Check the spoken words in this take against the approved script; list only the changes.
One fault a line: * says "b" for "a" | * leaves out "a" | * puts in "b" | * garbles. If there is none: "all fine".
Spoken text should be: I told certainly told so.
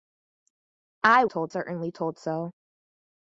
all fine